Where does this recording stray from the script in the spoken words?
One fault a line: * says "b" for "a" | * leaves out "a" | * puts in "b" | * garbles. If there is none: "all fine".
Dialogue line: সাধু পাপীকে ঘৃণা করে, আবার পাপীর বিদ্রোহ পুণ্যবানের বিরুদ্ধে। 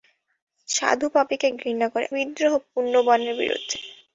* leaves out "আবার পাপীর"